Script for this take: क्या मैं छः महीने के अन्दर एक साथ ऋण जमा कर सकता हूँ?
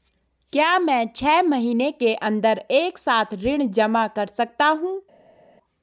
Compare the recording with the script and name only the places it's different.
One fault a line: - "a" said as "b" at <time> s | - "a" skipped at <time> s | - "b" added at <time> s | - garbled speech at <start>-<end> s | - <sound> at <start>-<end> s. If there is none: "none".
none